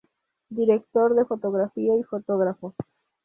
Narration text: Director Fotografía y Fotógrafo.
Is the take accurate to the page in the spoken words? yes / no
no